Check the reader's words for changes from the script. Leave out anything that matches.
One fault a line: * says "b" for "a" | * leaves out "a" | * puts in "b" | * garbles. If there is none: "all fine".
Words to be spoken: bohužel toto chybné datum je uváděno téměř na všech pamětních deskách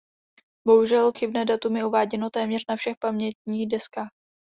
* leaves out "toto"